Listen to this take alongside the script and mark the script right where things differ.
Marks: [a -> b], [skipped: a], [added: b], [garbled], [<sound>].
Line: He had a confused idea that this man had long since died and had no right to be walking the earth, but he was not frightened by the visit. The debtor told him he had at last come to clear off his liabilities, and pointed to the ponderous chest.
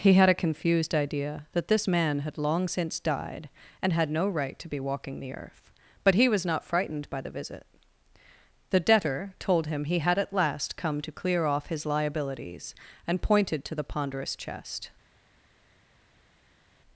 He had a confused idea that this man had long since died and had no right to be walking the earth, but he was not frightened by the visit. The debtor told him he had at last come to clear off his liabilities, and pointed to the ponderous chest.